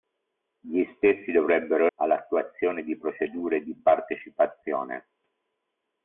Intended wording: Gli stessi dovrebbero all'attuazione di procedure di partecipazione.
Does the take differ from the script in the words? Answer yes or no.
no